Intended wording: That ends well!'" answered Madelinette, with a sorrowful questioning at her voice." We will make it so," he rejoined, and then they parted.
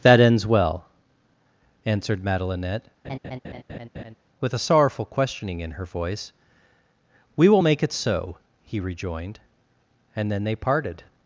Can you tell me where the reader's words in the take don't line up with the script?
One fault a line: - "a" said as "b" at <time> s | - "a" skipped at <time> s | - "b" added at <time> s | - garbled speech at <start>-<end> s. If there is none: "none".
- "at" said as "in" at 5.6 s